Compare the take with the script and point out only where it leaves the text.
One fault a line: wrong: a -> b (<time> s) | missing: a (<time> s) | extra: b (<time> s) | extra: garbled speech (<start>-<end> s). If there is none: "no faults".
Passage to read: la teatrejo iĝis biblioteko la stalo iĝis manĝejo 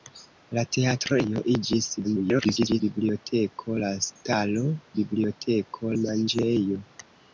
extra: garbled speech (2.0-2.8 s)
wrong: iĝis -> biblioteko (5.0 s)